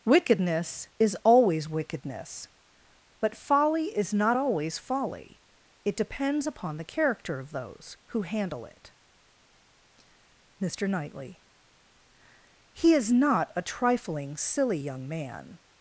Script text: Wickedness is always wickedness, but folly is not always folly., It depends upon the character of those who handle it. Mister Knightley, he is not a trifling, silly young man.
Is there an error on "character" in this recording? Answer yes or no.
no